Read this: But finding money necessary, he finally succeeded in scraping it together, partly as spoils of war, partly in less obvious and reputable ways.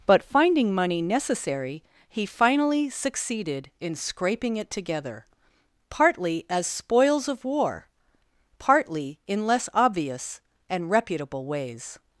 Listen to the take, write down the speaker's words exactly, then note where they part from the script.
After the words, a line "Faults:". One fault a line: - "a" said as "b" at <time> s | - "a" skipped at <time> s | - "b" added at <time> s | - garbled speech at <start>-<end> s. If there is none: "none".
But finding money necessary, he finally succeeded in scraping it together, partly as spoils of war, partly in less obvious and reputable ways.
Faults:
none